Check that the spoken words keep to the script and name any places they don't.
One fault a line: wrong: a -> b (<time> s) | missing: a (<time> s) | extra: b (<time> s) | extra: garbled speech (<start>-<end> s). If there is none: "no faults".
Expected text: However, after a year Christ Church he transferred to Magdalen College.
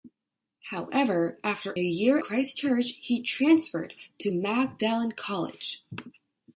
no faults